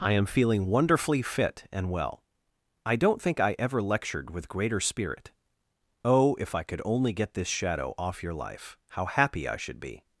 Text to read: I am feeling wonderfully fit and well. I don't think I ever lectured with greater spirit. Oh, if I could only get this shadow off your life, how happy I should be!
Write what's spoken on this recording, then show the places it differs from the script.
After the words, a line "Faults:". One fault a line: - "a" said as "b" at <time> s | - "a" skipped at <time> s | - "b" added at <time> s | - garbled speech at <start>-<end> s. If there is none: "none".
I am feeling wonderfully fit and well. I don't think I ever lectured with greater spirit. Oh, if I could only get this shadow off your life, how happy I should be!
Faults:
none